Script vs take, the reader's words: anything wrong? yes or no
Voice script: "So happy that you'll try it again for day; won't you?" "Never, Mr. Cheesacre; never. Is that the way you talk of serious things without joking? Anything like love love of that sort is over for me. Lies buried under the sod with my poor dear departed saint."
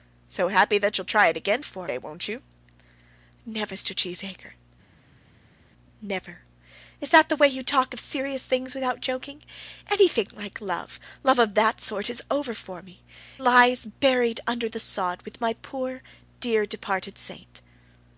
no